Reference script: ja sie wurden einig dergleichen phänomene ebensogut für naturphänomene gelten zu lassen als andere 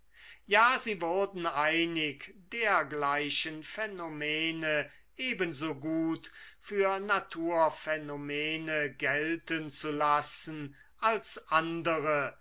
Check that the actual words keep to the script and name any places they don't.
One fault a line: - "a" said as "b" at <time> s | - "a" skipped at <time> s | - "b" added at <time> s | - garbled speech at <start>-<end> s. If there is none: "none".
none